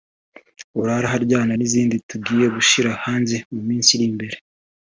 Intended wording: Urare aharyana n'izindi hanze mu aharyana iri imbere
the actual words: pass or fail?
fail